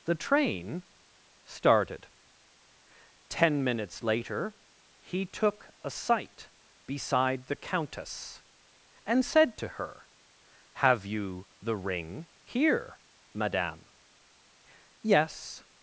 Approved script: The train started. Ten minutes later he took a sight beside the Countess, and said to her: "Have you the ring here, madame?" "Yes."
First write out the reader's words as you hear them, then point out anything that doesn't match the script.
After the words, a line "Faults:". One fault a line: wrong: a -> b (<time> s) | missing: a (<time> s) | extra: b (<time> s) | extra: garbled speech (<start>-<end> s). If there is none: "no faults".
The train started. Ten minutes later he took a sight beside the Countess, and said to her: "Have you the ring here, madame?" "Yes."
Faults:
no faults